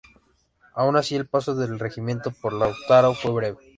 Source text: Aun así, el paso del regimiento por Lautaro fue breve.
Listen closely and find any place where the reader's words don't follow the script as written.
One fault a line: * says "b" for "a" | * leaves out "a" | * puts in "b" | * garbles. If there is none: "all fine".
all fine